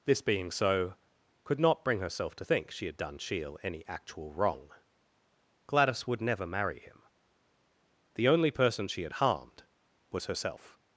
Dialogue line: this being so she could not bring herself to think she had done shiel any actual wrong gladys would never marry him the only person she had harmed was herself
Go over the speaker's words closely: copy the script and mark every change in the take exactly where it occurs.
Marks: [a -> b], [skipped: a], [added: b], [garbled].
this being so [skipped: she] could not bring herself to think she had done shiel any actual wrong gladys would never marry him the only person she had harmed was herself